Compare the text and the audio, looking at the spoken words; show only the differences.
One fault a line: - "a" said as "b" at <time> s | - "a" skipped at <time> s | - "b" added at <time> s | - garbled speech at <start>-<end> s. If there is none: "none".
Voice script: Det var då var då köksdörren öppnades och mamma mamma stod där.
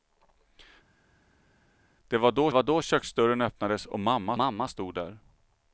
none